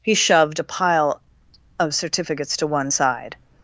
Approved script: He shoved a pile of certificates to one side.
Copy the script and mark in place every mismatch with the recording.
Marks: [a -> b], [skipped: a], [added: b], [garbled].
He shoved a pile of certificates to one side.